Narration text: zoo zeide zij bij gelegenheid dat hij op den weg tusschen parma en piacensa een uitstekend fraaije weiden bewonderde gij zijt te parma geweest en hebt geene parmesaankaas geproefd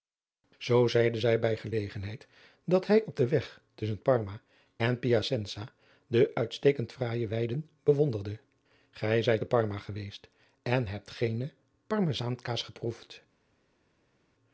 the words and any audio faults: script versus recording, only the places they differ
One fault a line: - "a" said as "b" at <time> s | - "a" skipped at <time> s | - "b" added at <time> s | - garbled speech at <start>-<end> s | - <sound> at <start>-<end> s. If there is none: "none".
- "een" said as "de" at 6.1 s